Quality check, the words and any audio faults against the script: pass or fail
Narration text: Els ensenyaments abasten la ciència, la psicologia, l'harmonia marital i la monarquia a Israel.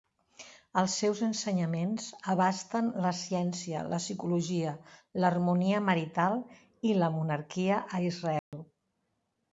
fail